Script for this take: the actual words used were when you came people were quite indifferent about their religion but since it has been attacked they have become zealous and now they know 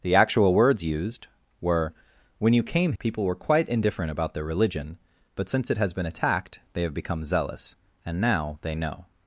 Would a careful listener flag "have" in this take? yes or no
no